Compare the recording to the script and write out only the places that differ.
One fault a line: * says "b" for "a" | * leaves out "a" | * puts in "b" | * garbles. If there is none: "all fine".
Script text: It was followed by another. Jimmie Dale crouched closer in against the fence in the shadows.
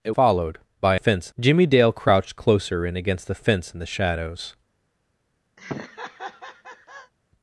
* leaves out "was"
* says "fence" for "another"